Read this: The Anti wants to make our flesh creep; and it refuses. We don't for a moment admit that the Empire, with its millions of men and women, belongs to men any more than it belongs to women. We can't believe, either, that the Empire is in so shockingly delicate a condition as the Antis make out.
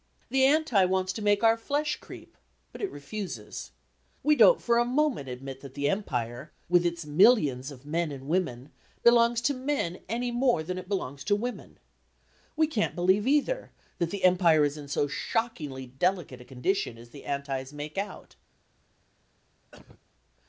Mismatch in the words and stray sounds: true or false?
true